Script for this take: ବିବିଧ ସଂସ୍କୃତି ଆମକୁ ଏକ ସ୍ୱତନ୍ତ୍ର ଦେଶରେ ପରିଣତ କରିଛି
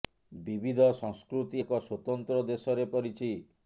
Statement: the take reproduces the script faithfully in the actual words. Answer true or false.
false